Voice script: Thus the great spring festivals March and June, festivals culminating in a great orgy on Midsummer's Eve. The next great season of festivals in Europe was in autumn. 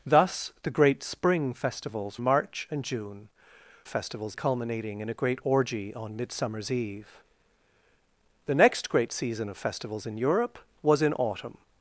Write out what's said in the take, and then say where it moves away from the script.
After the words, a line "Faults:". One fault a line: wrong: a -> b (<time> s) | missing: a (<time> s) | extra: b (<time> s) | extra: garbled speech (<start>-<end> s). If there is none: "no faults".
Thus the great spring festivals March and June, festivals culminating in a great orgy on Midsummer's Eve. The next great season of festivals in Europe was in autumn.
Faults:
no faults